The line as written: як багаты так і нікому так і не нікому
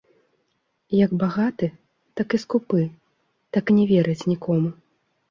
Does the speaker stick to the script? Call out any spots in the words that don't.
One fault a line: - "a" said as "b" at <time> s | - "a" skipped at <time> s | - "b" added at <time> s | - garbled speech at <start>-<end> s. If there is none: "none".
- "нікому" said as "скупы" at 2.4 s
- "верыць" added at 3.9 s